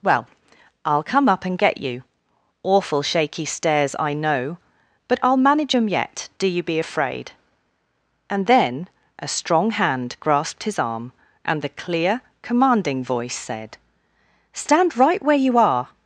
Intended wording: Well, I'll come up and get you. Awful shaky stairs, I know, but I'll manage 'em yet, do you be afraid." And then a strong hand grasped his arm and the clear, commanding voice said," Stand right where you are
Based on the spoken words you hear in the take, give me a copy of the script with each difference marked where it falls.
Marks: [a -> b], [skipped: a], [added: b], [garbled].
Well, I'll come up and get you. Awful shaky stairs, I know, but I'll manage 'em yet, do you be afraid." And then a strong hand grasped his arm and the clear, commanding voice said," Stand right where you are